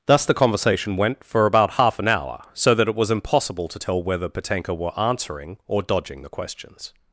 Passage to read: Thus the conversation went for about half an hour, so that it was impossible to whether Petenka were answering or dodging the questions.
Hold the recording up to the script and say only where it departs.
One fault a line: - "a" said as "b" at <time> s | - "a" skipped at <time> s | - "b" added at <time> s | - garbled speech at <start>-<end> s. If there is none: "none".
- "tell" added at 3.8 s